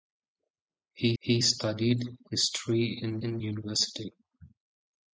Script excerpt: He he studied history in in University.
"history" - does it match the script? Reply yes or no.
yes